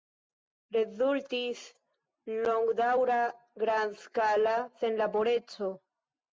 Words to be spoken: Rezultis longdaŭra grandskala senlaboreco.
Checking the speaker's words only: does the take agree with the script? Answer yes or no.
yes